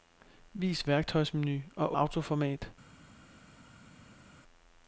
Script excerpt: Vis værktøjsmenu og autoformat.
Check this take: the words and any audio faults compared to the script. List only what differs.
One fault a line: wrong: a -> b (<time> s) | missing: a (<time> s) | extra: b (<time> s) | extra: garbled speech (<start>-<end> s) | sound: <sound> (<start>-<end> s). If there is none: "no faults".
no faults